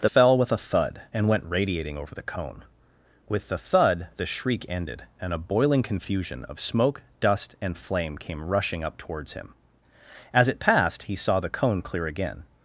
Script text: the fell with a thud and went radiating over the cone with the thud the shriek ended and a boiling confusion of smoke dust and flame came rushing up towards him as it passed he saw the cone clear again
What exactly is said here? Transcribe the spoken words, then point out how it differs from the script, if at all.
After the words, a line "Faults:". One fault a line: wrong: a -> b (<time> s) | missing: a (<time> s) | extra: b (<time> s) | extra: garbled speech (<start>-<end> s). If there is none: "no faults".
the fell with a thud and went radiating over the cone with the thud the shriek ended and a boiling confusion of smoke dust and flame came rushing up towards him as it passed he saw the cone clear again
Faults:
no faults